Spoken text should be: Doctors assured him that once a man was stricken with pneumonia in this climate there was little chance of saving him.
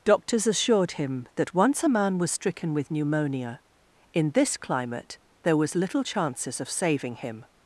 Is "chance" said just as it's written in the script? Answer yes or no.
no